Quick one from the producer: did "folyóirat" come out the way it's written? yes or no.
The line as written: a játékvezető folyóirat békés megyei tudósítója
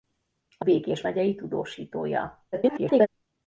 no